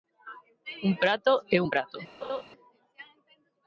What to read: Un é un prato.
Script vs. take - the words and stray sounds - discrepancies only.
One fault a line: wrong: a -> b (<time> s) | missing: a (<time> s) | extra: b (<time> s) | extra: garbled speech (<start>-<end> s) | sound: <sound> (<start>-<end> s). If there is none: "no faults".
extra: prato (1.0 s)
sound: laugh (2.2-2.4 s)